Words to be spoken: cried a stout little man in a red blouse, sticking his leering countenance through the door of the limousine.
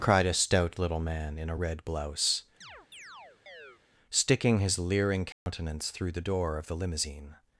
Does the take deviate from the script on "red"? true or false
false